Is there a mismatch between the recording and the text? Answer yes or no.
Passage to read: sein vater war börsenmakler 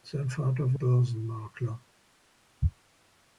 yes